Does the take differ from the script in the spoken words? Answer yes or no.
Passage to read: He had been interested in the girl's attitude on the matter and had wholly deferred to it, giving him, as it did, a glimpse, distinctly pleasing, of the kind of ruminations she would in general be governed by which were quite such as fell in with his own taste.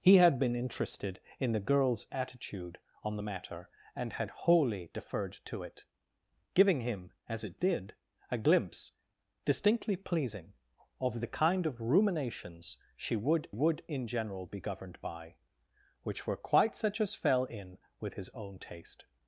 yes